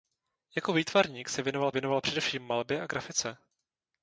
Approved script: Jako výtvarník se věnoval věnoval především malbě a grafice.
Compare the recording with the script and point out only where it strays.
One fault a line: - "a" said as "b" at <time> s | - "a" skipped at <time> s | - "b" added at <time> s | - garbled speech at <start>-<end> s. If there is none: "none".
none